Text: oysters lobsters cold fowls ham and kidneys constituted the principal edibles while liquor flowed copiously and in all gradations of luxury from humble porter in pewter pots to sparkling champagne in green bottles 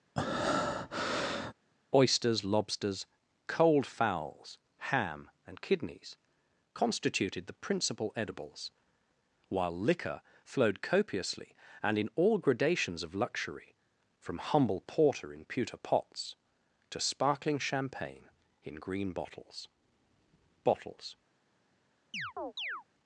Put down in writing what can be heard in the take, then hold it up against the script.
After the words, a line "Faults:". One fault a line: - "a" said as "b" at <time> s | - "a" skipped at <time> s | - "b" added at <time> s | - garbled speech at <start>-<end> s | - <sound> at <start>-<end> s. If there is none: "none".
oysters lobsters cold fowls ham and kidneys constituted the principal edibles while liquor flowed copiously and in all gradations of luxury from humble porter in pewter pots to sparkling champagne in green bottles bottles
Faults:
- breath at 0.2-1.5 s
- "bottles" added at 20.6 s
- chirp at 22.1-22.8 s